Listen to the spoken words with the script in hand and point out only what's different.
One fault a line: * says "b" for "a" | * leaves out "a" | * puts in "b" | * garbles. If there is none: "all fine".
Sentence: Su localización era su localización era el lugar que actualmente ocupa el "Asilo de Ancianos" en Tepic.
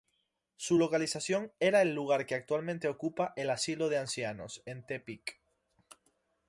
* leaves out "su localización era"